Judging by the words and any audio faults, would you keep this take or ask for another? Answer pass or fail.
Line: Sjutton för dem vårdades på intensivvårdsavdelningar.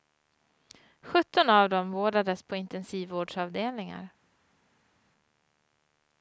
fail